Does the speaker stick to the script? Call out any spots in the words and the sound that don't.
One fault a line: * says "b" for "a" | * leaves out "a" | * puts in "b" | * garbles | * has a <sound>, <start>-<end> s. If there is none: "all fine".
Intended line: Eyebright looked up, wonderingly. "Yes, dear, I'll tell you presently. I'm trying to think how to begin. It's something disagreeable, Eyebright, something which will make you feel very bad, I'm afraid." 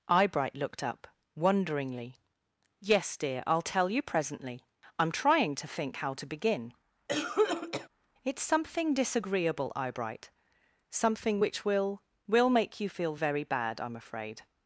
* has a cough, 7.1-7.9 s
* puts in "will"